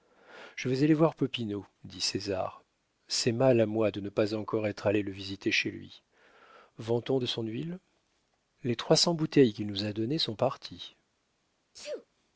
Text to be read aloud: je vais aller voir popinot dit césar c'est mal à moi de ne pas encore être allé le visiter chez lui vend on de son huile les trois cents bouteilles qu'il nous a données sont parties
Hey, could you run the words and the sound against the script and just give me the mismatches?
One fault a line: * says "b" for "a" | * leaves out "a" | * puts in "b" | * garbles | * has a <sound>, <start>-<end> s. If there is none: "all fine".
* has a sneeze, 11.7-12.1 s